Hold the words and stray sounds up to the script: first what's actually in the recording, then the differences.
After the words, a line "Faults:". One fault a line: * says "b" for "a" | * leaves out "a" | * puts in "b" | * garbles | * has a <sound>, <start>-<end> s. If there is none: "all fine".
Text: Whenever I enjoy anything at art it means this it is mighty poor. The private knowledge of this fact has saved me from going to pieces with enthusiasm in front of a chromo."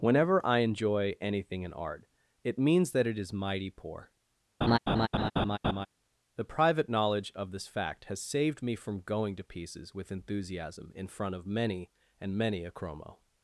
Whenever I enjoy anything in art it means that it is mighty poor. The private knowledge of this fact has saved me from going to pieces with enthusiasm in front of many and many a chromo."
Faults:
* says "in" for "at"
* says "that" for "this"
* has a laugh, 4.6-5.9 s
* puts in "many and many"